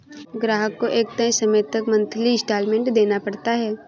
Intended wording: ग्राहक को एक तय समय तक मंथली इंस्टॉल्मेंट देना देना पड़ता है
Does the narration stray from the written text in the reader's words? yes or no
yes